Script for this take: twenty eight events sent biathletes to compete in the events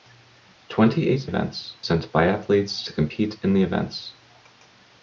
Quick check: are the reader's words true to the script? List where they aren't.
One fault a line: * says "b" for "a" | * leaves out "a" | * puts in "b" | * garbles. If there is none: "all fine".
all fine